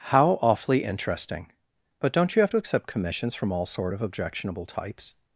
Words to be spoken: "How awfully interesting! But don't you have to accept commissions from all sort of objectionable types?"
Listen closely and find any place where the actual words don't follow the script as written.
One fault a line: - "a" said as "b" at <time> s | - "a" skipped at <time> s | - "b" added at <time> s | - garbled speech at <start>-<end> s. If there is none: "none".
none